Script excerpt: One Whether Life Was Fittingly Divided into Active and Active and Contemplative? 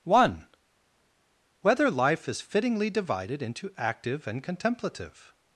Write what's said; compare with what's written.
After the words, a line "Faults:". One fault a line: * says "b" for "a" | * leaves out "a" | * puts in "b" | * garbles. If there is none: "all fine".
One Whether Life Is Fittingly Divided into Active and Contemplative?
Faults:
* says "Is" for "Was"
* leaves out "Active and"